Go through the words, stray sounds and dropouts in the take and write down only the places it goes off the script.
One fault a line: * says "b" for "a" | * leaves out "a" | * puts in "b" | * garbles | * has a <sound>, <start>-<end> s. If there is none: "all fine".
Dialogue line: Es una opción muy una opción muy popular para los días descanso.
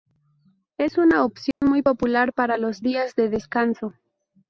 * has a dropout, 1.5-1.6 s
* leaves out "una opción muy"
* puts in "de"